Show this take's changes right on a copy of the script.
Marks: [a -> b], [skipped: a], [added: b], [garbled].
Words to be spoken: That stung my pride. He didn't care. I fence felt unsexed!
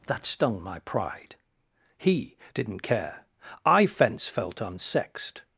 That stung my pride. He didn't care. I fence felt unsexed!